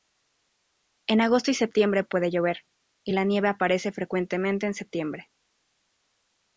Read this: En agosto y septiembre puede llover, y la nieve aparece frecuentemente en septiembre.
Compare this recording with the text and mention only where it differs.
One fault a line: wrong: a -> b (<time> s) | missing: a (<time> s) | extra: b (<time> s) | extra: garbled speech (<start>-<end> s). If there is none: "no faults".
no faults